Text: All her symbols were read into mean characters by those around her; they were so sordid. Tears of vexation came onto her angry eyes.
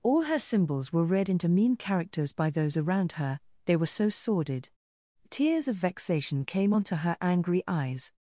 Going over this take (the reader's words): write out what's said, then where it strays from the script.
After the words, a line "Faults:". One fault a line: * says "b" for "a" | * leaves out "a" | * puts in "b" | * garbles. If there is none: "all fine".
All her symbols were read into mean characters by those around her; they were so sordid. Tears of vexation came onto her angry eyes.
Faults:
all fine